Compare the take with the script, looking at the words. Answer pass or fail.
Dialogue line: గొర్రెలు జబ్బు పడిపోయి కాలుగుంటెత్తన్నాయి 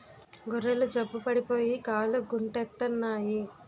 pass